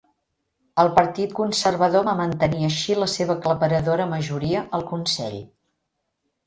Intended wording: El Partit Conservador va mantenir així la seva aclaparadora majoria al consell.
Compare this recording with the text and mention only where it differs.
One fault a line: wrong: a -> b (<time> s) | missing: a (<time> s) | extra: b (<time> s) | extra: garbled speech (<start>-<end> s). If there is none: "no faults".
no faults